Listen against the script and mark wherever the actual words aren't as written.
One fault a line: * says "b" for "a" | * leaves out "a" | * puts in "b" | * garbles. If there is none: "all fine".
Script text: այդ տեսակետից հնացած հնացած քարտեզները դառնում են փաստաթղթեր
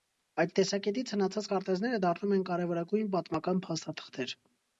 * leaves out "հնացած"
* puts in "կարևորագույն պատմական"